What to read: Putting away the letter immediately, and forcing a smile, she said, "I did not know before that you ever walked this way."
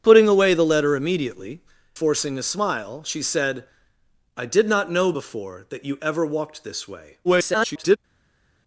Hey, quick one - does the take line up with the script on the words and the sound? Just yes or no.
no